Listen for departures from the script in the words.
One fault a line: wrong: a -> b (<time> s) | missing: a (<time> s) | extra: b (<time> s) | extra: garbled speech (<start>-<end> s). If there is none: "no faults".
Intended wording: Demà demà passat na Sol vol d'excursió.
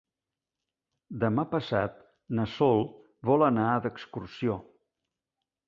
missing: demà (1.4 s)
extra: anar (3.5 s)